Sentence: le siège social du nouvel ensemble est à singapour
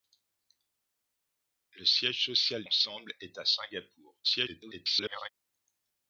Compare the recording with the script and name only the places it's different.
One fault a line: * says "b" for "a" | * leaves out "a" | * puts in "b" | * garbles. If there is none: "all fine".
* leaves out "du nouvel"
* garbles